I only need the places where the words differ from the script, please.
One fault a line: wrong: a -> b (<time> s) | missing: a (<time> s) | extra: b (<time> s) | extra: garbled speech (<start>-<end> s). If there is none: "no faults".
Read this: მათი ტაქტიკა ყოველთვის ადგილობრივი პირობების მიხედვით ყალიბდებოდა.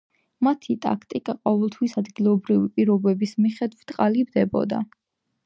no faults